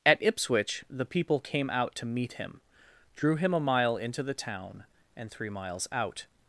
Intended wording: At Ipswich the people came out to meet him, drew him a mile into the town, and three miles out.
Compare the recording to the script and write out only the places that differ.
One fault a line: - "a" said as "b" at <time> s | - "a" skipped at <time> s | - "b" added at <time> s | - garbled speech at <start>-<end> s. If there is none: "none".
none